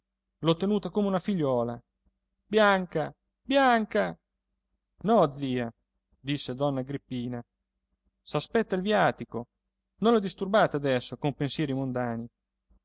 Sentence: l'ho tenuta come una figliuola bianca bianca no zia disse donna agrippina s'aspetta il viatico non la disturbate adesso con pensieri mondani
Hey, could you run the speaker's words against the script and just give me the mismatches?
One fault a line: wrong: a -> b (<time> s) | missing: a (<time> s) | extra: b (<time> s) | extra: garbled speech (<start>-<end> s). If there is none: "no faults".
no faults